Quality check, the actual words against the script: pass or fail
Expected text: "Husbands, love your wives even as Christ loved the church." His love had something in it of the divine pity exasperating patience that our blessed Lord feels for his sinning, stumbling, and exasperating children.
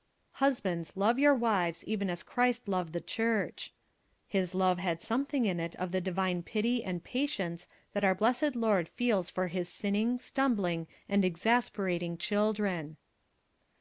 fail